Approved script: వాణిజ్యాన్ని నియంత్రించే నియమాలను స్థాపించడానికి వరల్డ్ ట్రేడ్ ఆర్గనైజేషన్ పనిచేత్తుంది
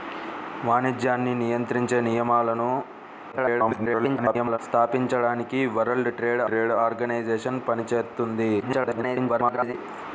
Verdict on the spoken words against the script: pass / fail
fail